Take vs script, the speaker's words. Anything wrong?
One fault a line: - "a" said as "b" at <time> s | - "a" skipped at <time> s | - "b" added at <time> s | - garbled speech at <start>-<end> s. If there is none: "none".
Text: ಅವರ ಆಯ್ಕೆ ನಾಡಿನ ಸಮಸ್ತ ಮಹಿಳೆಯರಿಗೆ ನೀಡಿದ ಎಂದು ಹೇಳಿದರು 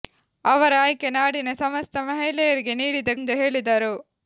none